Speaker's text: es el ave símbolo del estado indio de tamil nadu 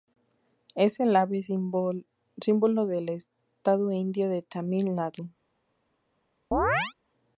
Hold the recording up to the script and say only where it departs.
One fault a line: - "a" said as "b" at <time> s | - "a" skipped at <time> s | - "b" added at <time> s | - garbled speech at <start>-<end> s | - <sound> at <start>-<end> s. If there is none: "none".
- chirp at 6.5-6.9 s